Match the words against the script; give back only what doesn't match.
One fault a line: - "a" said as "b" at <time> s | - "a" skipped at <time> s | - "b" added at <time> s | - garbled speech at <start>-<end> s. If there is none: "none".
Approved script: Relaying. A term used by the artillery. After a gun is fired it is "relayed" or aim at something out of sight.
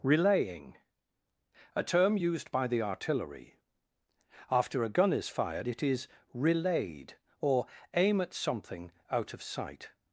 none